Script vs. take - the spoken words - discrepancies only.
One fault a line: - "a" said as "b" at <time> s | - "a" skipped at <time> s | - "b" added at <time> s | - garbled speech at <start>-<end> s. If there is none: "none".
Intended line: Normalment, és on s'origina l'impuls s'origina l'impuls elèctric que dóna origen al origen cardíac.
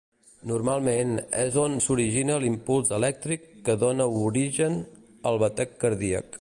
- "s'origina l'impuls" skipped at 2.9 s
- "origen" said as "batec" at 5.5 s